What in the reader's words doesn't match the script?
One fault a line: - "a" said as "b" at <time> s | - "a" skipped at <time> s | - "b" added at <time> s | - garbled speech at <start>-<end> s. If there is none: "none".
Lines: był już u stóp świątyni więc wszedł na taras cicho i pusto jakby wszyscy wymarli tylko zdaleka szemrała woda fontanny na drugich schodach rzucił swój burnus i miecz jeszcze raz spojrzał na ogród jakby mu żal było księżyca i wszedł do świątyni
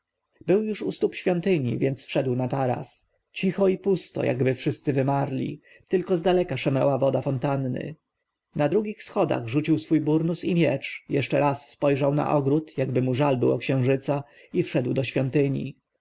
none